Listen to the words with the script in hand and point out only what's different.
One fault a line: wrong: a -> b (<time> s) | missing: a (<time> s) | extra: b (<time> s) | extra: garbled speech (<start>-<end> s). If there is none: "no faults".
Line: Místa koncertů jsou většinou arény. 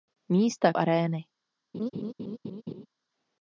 missing: koncertů jsou většinou (0.7 s)